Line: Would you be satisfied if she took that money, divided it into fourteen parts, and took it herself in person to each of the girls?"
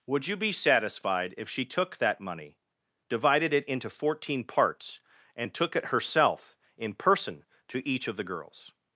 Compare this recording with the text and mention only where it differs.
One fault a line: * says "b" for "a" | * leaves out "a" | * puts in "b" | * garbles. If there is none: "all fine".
all fine